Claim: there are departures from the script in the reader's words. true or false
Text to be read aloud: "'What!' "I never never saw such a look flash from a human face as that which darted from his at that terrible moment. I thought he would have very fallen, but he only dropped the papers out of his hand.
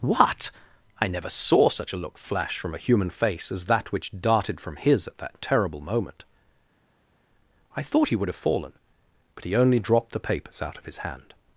true